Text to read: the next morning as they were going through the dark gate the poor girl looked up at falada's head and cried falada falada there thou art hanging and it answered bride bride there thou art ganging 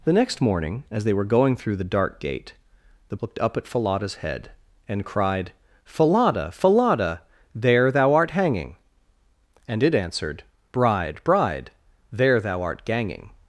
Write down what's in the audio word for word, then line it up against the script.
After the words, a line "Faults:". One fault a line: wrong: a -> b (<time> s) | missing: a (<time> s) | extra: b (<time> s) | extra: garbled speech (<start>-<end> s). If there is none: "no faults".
the next morning as they were going through the dark gate the looked up at falada's head and cried falada falada there thou art hanging and it answered bride bride there thou art ganging
Faults:
missing: poor girl (3.2 s)